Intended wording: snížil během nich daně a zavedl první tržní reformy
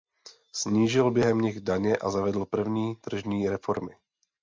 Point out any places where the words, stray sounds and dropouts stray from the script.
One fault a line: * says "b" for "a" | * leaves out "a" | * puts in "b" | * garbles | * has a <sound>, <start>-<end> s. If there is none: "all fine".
all fine